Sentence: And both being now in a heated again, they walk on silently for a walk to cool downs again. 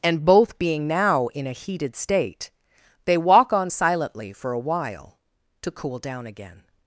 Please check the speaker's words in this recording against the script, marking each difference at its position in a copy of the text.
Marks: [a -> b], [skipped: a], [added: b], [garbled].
And both being now in a heated [again, -> state] they walk on silently for a [walk -> while] to cool [downs -> down] again.